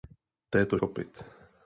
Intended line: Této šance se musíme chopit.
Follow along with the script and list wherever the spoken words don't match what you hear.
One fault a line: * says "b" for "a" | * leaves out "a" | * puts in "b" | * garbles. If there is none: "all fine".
* leaves out "šance se musíme"